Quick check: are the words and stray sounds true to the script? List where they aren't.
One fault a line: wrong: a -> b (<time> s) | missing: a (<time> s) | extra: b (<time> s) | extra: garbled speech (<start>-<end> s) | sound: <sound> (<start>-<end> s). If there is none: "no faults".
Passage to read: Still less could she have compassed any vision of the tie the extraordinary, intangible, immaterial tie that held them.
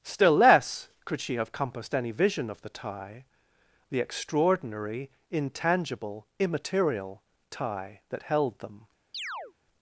sound: chirp (9.1-9.5 s)